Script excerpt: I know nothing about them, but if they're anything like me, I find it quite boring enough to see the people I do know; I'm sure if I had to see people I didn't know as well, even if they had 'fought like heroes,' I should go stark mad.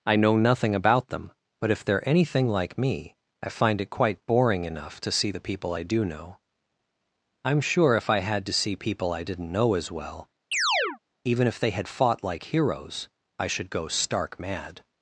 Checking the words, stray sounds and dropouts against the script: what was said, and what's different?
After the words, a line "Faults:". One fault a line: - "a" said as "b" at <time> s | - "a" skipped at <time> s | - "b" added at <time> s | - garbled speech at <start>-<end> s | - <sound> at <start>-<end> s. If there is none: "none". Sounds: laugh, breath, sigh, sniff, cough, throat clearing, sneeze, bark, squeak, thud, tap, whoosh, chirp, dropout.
I know nothing about them, but if they're anything like me, I find it quite boring enough to see the people I do know; I'm sure if I had to see people I didn't know as well, even if they had 'fought like heroes,' I should go stark mad.
Faults:
- chirp at 10.5-11.0 s